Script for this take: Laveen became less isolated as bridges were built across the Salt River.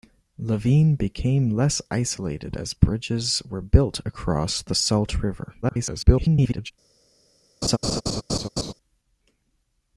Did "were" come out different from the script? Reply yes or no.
no